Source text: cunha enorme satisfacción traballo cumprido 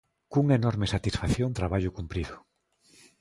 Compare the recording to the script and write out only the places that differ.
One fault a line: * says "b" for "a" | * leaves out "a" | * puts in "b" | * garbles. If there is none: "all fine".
all fine